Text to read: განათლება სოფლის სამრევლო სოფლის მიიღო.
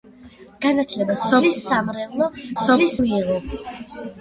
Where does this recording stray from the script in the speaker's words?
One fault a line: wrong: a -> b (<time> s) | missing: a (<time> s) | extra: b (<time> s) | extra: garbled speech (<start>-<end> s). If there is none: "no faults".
no faults